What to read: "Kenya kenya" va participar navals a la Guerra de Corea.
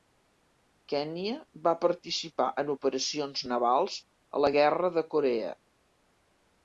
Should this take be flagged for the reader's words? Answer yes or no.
yes